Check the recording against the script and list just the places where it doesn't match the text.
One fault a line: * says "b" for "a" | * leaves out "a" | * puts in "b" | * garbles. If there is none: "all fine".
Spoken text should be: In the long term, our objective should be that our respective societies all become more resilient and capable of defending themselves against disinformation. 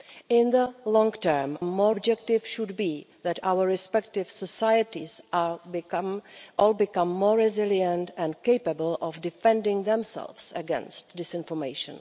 * says "more" for "our"